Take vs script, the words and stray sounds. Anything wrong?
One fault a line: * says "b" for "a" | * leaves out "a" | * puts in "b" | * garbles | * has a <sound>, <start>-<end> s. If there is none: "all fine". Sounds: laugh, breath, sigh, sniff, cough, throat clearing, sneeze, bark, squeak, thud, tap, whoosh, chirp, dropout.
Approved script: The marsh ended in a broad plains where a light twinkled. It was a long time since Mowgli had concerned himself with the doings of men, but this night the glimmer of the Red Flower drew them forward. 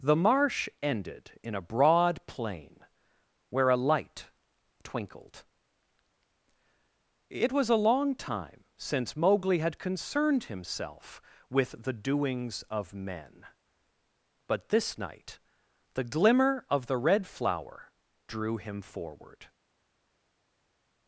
* says "plain" for "plains"
* says "him" for "them"